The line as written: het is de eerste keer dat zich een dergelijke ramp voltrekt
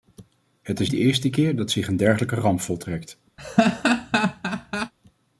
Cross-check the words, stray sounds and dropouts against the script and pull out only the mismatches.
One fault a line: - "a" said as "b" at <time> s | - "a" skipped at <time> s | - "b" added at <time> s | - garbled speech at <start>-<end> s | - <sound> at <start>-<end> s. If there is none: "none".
- laugh at 3.4-4.9 s